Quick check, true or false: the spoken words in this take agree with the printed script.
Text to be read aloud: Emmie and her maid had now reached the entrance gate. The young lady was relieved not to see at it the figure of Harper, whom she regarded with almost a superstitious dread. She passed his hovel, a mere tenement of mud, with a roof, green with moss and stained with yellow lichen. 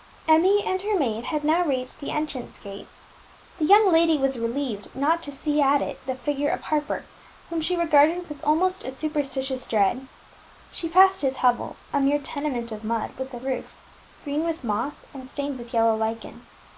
true